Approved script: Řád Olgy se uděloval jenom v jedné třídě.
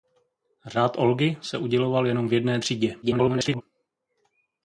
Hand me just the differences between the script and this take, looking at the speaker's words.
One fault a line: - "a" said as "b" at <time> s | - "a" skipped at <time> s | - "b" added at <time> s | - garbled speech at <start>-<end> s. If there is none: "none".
- garbled speech at 3.0-3.6 s